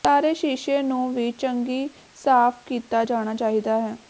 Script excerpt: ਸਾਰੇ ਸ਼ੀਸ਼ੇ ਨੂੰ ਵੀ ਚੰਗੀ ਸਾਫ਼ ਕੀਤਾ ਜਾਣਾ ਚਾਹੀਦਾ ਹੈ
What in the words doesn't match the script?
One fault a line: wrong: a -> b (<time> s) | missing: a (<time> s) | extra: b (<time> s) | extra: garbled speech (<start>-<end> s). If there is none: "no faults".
no faults